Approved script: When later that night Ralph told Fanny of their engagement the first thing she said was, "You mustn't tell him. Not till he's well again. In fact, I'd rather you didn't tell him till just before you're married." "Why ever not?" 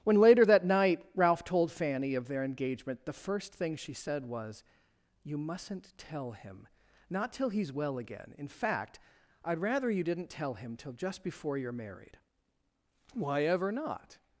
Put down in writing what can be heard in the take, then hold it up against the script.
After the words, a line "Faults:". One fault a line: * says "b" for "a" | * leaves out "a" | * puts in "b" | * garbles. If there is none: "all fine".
When later that night Ralph told Fanny of their engagement the first thing she said was, "You mustn't tell him. Not till he's well again. In fact, I'd rather you didn't tell him till just before you're married." "Why ever not?"
Faults:
all fine